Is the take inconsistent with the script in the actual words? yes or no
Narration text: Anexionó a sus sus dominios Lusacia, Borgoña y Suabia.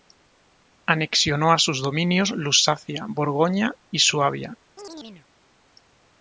yes